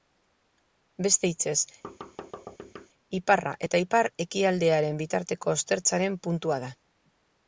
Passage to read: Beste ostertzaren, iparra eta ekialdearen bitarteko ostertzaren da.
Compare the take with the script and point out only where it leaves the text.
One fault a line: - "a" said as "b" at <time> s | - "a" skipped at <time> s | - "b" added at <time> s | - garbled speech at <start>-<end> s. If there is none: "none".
- "ostertzaren" said as "hitzez" at 1.3 s
- "ipar" added at 3.8 s
- "puntua" added at 6.3 s